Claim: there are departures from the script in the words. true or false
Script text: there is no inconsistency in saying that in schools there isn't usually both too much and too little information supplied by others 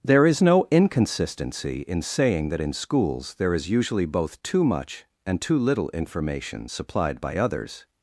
true